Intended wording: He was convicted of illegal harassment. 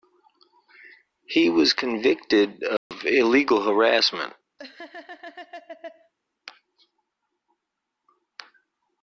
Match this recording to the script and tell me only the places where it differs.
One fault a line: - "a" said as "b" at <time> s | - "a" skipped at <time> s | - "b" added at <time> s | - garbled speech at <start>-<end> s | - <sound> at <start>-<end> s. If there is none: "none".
- dropout at 2.8-2.9 s
- laugh at 4.6-6.1 s